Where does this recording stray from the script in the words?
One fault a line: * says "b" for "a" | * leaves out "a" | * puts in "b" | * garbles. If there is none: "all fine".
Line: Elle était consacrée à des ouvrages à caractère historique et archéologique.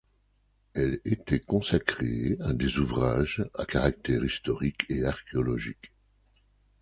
all fine